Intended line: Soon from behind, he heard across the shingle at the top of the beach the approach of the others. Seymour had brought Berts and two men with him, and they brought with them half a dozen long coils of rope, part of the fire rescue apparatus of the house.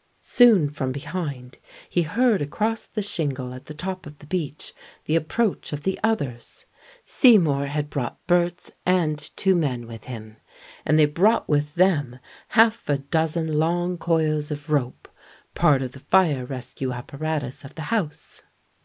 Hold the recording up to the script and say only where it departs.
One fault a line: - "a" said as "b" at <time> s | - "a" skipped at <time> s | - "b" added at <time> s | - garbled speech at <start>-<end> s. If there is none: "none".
none